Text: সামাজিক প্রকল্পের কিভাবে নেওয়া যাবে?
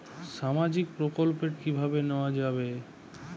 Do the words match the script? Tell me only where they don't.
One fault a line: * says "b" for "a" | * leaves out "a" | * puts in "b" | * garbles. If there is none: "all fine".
all fine